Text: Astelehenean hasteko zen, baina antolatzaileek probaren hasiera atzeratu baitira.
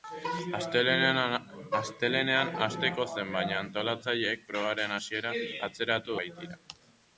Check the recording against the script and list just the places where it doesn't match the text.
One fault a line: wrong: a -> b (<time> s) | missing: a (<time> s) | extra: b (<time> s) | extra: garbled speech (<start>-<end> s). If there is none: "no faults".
no faults